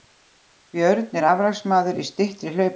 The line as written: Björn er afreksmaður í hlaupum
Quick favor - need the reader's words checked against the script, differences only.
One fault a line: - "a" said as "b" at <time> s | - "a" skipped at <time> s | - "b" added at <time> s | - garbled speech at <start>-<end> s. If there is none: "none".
- "styttri" added at 2.1 s